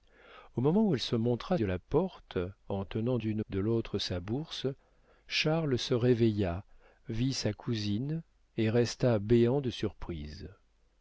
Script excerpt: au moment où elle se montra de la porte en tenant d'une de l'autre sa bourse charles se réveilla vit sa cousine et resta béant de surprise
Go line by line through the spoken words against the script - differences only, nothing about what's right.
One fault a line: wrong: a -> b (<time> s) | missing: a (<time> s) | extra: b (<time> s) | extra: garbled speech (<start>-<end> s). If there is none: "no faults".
no faults